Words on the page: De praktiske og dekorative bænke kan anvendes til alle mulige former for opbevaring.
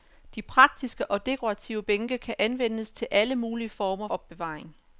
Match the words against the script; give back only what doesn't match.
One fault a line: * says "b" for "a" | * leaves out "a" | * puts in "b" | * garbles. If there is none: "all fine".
* leaves out "for"